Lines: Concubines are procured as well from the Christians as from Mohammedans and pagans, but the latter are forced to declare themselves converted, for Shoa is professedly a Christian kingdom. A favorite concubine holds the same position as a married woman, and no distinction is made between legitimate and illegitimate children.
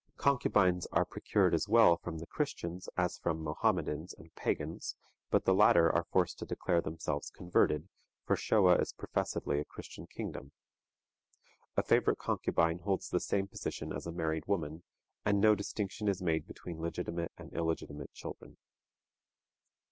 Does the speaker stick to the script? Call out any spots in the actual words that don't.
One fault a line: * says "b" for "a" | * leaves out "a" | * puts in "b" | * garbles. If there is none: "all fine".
all fine